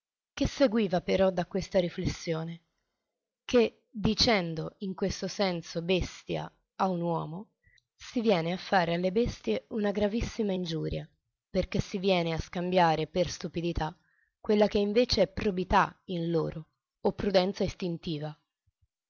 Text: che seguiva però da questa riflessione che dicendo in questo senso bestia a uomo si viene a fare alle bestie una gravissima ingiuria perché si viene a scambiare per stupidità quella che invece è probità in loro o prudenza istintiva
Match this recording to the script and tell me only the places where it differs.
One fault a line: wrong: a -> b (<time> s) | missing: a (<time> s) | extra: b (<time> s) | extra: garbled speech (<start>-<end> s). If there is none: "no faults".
extra: un (6.9 s)